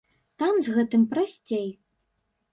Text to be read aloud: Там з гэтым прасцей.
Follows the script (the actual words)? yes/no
yes